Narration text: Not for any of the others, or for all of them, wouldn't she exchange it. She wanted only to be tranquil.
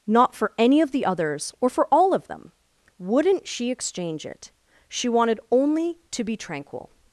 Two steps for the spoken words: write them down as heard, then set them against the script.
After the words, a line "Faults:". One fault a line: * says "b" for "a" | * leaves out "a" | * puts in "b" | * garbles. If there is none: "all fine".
Not for any of the others, or for all of them, wouldn't she exchange it. She wanted only to be tranquil.
Faults:
all fine